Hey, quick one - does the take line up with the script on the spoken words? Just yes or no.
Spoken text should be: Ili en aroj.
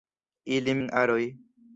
yes